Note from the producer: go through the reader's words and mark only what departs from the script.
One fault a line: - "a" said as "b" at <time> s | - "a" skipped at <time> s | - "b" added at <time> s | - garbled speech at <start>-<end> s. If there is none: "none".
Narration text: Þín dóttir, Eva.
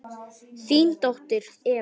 none